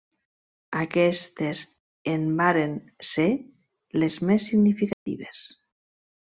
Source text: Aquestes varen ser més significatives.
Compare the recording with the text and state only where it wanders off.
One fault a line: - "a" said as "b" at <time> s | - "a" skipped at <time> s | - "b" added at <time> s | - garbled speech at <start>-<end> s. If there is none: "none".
- "en" added at 2.1 s
- "les" added at 4.1 s